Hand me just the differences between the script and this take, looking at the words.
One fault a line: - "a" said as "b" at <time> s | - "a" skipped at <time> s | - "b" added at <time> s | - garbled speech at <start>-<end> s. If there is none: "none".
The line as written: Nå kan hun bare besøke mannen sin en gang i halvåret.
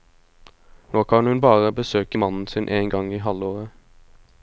none